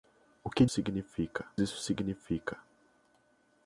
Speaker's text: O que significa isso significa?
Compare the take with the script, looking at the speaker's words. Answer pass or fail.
pass